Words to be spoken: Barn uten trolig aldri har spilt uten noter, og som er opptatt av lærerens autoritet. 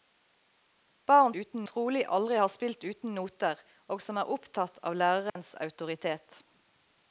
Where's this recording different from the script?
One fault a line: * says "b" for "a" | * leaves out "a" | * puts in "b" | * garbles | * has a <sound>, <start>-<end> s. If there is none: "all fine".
* has a dropout, 5.3-5.4 s